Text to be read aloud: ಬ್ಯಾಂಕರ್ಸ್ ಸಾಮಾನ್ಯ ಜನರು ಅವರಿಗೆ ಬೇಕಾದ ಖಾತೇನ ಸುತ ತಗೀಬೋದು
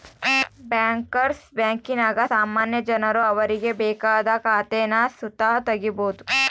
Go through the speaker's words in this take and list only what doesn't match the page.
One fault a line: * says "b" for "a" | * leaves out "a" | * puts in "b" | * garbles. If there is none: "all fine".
* puts in "ಬ್ಯಾಂಕಿನಾಗ"